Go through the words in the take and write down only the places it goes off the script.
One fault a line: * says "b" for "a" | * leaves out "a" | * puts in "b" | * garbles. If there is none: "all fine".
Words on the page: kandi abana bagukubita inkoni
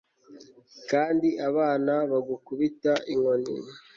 all fine